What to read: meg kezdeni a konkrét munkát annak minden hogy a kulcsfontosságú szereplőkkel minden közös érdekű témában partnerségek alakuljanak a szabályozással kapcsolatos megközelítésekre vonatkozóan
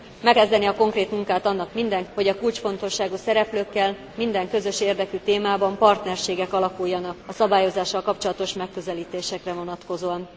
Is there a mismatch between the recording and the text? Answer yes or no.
no